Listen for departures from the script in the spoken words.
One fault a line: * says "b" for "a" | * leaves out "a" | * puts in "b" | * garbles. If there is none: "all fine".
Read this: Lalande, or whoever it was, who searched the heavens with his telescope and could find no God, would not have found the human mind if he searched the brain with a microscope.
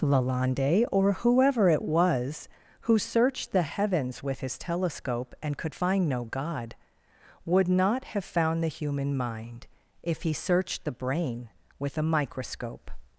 all fine